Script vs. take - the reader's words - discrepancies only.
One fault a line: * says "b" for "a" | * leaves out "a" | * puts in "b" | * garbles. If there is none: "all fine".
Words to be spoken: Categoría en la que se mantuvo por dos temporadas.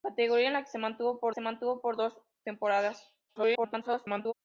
* puts in "se mantuvo por"
* garbles